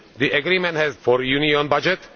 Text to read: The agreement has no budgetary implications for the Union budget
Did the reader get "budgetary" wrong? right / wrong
wrong